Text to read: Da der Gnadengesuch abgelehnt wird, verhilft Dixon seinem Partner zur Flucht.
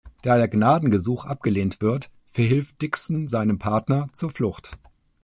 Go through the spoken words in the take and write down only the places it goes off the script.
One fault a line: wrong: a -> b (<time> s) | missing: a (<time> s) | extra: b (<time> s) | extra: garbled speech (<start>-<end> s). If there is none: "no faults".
no faults